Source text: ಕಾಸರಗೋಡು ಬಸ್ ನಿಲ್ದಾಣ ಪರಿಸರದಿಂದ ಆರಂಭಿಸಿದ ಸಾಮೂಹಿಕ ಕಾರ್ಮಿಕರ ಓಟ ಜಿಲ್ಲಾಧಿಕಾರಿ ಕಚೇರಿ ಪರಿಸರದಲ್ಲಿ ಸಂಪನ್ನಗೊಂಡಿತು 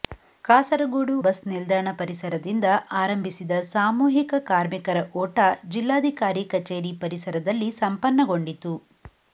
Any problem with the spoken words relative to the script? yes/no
no